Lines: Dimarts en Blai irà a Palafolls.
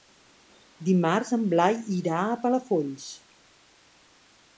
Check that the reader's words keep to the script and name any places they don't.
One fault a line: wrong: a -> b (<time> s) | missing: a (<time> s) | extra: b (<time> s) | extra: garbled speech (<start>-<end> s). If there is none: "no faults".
no faults